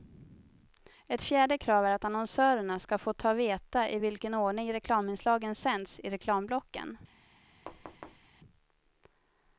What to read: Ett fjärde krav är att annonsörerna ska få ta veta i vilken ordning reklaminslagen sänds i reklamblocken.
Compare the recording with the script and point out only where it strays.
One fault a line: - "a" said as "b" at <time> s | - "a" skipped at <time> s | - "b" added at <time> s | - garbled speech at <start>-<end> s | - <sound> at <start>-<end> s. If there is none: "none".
- thud at 7.7-8.3 s